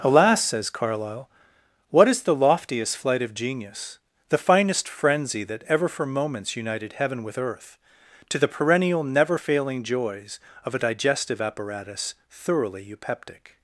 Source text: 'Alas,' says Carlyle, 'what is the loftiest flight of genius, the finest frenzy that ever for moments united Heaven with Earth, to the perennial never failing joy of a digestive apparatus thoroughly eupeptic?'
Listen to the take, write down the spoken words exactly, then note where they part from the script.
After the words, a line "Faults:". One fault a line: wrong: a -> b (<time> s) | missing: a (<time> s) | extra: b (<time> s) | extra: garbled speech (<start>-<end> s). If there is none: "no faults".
'Alas,' says Carlyle, 'what is the loftiest flight of genius, the finest frenzy that ever for moments united Heaven with Earth, to the perennial never failing joys of a digestive apparatus thoroughly eupeptic?'
Faults:
wrong: joy -> joys (9.8 s)